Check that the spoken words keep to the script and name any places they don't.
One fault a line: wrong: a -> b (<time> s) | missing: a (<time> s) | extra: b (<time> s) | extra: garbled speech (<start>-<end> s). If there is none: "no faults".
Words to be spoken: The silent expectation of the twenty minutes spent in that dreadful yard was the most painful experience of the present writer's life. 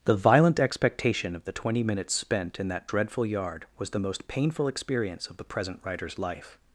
wrong: silent -> violent (0.1 s)